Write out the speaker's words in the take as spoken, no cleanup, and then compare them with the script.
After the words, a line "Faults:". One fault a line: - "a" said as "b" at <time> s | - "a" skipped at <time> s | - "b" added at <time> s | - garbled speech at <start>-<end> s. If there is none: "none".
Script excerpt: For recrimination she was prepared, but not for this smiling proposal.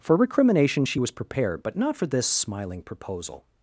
For recrimination she was prepared, but not for this smiling proposal.
Faults:
none